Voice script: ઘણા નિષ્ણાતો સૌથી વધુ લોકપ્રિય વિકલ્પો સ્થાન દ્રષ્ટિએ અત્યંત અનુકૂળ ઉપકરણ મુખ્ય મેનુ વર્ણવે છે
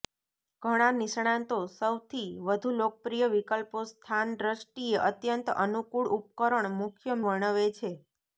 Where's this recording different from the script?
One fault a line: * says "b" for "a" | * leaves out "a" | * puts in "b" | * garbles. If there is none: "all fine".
* leaves out "મેનુ"